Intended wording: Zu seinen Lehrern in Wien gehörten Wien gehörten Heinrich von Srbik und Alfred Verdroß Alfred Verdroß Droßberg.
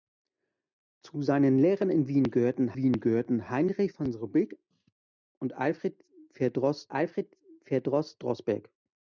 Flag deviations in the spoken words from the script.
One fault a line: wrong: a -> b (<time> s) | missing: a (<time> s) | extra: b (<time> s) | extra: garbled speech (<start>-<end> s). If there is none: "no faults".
no faults